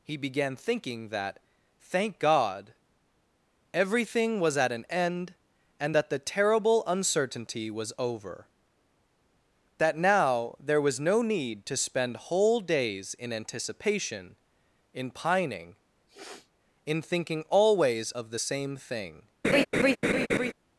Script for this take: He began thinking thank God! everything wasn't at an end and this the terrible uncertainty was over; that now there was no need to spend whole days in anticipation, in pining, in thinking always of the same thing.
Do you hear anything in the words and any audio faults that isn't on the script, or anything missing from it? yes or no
yes